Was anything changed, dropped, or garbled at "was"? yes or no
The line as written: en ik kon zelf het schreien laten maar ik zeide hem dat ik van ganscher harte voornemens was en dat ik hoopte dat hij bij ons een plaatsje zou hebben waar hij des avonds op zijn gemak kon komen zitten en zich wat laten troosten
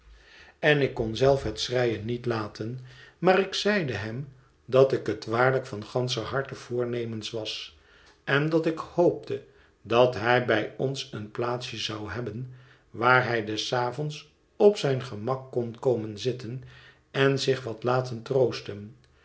no